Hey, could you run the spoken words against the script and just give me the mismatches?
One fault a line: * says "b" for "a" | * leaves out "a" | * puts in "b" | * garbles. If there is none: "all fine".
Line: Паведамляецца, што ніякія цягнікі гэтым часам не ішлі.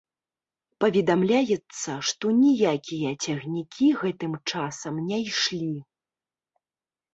all fine